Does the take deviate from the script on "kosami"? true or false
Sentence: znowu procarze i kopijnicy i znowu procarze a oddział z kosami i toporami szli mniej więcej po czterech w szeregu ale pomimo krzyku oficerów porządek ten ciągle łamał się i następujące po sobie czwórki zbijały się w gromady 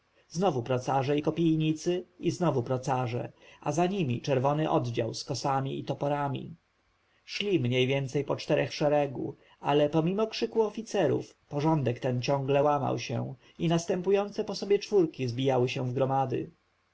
false